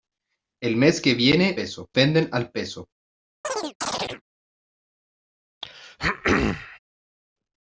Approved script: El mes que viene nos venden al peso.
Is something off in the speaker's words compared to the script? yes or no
yes